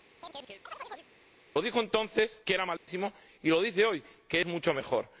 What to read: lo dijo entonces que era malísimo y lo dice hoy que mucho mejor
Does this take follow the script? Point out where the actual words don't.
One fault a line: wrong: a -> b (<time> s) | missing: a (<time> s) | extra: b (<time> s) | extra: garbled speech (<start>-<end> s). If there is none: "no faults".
no faults